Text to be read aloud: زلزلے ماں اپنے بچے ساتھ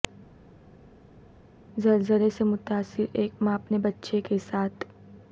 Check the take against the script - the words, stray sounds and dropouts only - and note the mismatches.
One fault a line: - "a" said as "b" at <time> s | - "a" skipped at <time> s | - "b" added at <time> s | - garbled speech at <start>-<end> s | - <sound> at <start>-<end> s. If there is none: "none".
- "سے متاثر ایک" added at 2.3 s
- "کے" added at 4.2 s